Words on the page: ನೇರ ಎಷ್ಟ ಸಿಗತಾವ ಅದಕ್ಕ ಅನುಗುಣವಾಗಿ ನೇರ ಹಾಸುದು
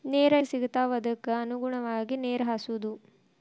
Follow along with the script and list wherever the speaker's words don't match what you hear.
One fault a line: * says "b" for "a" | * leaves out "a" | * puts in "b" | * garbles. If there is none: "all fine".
* leaves out "ಎಷ್ಟ"